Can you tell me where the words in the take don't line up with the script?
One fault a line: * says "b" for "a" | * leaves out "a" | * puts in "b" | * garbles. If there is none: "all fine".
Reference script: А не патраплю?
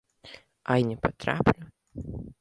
all fine